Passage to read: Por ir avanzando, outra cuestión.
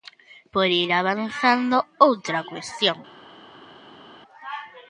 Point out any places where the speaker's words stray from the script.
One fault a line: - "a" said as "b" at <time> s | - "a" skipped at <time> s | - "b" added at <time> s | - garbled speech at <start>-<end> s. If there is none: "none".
none